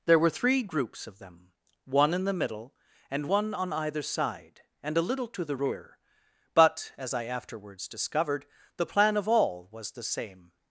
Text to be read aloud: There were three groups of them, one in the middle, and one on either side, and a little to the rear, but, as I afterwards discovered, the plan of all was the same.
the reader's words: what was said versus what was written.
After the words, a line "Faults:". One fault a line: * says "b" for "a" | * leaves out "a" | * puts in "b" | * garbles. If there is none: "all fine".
There were three groups of them, one in the middle, and one on either side, and a little to the rear, but, as I afterwards discovered, the plan of all was the same.
Faults:
all fine